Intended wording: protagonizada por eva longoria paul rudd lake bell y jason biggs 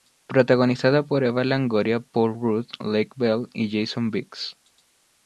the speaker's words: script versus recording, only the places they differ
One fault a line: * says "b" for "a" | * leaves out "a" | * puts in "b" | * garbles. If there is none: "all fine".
all fine